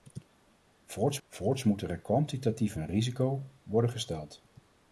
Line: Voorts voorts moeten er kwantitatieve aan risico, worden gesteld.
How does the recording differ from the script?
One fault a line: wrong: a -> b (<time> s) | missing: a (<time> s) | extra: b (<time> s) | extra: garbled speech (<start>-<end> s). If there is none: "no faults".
no faults